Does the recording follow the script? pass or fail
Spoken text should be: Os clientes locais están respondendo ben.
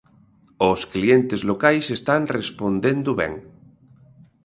pass